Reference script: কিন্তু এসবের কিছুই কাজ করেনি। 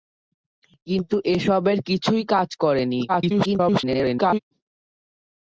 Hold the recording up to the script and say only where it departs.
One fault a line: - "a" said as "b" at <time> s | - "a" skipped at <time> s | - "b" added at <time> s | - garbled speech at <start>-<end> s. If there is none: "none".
- garbled speech at 3.1-4.4 s